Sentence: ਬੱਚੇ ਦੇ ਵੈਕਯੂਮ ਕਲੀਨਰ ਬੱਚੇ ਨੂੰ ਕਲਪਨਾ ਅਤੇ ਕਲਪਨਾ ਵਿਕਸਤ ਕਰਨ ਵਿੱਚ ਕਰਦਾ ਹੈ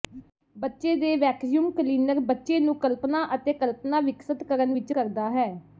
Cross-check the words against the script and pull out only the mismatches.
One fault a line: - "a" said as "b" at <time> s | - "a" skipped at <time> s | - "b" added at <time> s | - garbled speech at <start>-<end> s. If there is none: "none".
none